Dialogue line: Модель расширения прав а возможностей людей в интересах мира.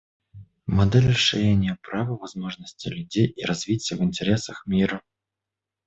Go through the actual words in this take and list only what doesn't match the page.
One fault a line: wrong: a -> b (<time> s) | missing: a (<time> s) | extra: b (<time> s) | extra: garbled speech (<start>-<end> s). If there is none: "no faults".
wrong: а -> и (2.1 s)
extra: и развития (3.3 s)